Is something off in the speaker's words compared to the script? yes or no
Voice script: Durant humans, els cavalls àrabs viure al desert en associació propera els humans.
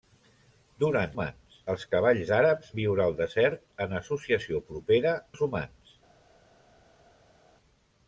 no